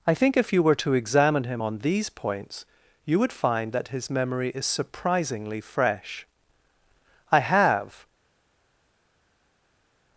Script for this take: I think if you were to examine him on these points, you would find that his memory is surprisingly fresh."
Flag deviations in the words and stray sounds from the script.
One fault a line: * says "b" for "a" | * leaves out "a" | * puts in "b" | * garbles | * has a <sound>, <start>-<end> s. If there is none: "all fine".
* puts in "I have"